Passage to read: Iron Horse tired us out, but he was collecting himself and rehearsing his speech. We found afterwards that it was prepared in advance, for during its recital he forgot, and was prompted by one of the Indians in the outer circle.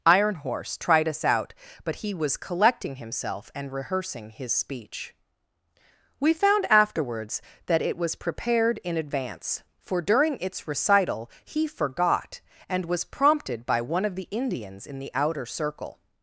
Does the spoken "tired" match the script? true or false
false